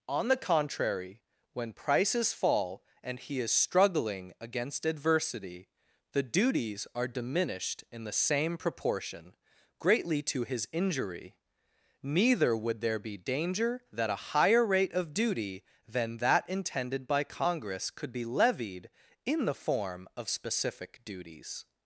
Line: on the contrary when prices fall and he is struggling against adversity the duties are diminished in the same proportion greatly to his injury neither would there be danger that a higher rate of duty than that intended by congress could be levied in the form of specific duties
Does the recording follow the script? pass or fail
pass